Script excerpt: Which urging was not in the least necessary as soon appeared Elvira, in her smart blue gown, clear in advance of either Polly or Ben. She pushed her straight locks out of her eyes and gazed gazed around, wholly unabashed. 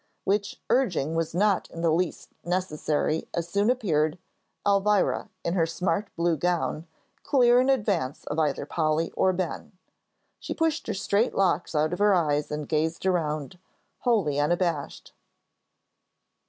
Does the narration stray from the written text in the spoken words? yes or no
yes